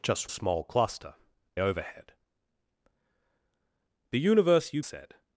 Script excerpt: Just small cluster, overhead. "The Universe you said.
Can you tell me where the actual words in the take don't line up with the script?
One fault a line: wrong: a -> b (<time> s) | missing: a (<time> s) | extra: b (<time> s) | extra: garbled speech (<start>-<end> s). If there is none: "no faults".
no faults